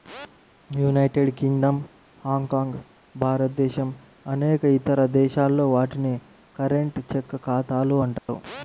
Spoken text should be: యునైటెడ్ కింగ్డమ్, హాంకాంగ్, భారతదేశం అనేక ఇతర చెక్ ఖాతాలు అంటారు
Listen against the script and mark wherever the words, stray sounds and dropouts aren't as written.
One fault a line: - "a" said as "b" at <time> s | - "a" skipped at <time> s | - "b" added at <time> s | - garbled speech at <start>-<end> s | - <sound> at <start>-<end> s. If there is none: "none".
- "దేశాల్లో వాటిని కరెంట్" added at 5.2 s
- dropout at 8.2-8.3 s